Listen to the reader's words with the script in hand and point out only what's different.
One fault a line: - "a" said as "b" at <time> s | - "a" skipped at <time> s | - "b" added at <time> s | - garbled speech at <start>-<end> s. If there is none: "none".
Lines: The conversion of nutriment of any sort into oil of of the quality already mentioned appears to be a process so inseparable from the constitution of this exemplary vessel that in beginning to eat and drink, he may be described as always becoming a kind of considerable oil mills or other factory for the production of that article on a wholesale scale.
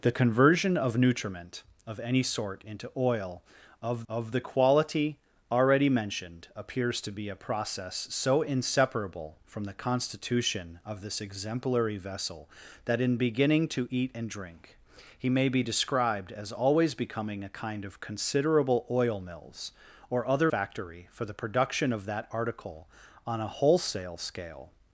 none